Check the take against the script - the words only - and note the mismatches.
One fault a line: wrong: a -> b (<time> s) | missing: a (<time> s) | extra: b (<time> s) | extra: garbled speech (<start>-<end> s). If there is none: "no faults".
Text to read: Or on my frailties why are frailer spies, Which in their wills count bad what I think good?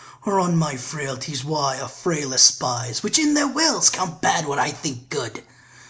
no faults